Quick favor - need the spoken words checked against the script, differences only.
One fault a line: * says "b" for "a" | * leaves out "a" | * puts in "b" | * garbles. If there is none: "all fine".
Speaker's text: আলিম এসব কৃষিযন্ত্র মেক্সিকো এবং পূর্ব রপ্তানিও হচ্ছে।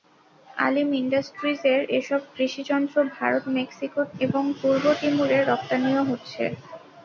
* puts in "ইন্ডাস্ট্রিজের"
* puts in "ভারত"
* puts in "তিমুরে"